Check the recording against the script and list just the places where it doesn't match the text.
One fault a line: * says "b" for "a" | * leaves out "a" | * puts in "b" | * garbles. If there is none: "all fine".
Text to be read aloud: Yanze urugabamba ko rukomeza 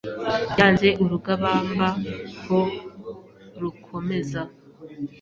all fine